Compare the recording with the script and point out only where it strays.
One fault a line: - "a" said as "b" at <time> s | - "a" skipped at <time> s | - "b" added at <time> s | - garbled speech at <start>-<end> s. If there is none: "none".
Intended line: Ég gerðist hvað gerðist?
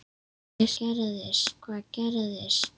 none